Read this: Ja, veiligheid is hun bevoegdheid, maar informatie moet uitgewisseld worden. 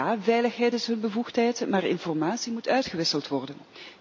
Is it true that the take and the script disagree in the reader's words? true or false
false